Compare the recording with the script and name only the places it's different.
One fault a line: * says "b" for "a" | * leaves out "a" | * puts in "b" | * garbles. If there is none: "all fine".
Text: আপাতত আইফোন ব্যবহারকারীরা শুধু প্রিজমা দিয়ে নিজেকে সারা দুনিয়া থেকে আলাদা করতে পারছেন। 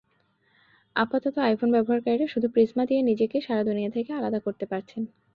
all fine